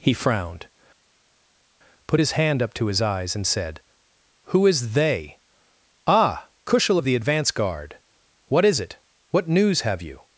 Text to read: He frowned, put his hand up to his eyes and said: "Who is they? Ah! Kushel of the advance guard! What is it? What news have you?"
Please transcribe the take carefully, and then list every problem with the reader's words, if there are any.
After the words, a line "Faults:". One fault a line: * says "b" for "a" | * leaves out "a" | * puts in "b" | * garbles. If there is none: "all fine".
He frowned, put his hand up to his eyes and said: "Who is they? Ah! Kushel of the advance guard! What is it? What news have you?"
Faults:
all fine